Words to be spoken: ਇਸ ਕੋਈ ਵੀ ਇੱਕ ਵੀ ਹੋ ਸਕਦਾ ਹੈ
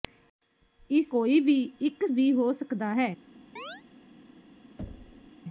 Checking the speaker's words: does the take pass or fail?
pass